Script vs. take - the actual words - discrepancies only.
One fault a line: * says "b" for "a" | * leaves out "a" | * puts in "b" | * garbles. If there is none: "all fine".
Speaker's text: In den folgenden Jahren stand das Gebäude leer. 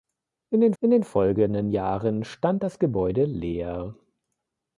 * puts in "in den"